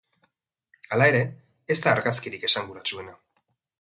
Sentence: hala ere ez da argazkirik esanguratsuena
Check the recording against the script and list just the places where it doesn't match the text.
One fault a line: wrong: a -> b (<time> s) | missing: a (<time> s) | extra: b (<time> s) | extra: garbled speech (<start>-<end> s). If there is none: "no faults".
no faults